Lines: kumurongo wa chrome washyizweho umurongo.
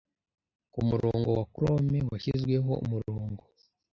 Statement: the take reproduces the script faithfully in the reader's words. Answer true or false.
true